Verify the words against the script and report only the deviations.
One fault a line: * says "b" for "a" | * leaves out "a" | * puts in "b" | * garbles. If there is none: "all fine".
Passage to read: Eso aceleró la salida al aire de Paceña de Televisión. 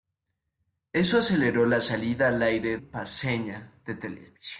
* leaves out "de"